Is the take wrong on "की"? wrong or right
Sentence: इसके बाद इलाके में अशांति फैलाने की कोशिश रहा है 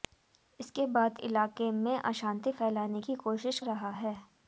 right